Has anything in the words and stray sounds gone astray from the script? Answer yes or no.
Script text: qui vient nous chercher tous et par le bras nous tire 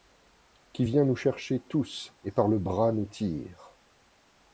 no